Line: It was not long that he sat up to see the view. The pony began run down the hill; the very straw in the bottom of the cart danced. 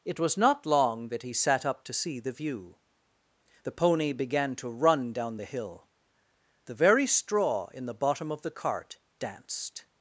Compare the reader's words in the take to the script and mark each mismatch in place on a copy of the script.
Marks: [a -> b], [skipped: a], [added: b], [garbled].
It was not long that he sat up to see the view. The pony began [added: to] run down the hill; the very straw in the bottom of the cart danced.